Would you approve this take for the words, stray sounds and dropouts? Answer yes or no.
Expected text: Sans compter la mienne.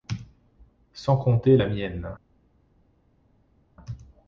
yes